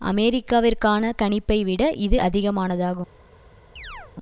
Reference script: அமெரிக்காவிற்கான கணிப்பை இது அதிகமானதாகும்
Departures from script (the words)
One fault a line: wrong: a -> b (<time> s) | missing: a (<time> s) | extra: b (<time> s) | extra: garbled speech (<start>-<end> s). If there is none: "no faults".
extra: விட (1.6 s)